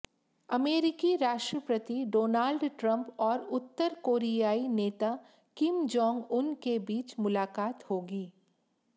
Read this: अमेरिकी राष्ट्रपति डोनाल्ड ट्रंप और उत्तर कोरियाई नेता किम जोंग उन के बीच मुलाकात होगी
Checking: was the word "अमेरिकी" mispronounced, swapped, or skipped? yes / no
no